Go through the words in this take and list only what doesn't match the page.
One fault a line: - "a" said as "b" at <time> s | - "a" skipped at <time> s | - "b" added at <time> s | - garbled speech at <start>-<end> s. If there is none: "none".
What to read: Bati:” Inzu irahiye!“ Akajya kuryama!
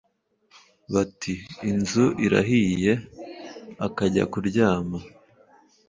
none